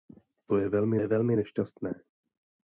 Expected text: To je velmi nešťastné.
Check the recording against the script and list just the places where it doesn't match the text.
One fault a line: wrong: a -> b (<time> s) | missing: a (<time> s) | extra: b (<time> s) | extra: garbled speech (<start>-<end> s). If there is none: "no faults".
extra: je velmi (1.0 s)